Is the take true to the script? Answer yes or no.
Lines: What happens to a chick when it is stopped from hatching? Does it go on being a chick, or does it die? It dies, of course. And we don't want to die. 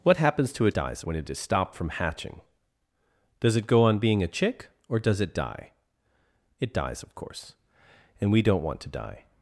no